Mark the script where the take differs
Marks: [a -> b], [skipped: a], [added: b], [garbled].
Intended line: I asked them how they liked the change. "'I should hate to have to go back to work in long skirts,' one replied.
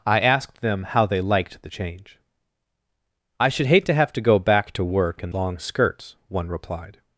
I asked them how they liked the change. "'I should hate to have to go back to work in long skirts,' one replied.